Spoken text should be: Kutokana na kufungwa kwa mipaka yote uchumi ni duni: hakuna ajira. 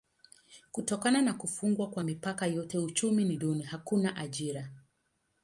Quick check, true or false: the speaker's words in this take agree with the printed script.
true